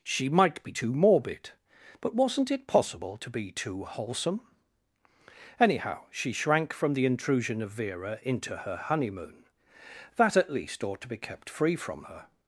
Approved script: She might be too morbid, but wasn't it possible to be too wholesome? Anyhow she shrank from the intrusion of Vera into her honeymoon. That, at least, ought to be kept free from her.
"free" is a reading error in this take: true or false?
false